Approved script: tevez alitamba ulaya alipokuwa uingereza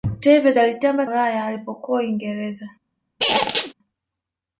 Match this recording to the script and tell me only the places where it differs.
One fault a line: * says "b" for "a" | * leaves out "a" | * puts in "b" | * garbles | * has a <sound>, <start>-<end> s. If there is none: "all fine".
* has a squeak, 3.2-3.7 s